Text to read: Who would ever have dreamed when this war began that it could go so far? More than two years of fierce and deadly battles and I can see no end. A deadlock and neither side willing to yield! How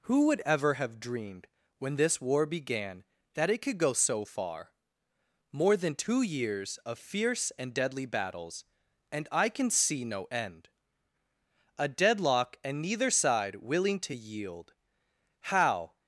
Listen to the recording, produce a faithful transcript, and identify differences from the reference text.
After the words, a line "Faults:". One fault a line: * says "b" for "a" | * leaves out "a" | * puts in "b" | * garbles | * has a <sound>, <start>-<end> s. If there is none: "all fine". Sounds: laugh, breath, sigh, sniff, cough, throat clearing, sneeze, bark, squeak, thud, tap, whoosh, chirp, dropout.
Who would ever have dreamed when this war began that it could go so far? More than two years of fierce and deadly battles and I can see no end. A deadlock and neither side willing to yield! How
Faults:
all fine